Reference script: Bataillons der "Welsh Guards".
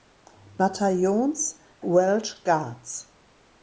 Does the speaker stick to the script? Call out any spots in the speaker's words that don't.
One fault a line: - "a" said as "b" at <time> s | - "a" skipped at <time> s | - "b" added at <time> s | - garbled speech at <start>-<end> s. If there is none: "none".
- "der" skipped at 1.6 s